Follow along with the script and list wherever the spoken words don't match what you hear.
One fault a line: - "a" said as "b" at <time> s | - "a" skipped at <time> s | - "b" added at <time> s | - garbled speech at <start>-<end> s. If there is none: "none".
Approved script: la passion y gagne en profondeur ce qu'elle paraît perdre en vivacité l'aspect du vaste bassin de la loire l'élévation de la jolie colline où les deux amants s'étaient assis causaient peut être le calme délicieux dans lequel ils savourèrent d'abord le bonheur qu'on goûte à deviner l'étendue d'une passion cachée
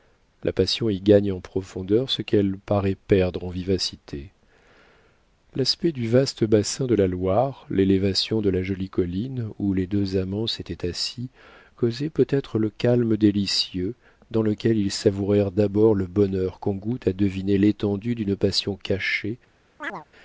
none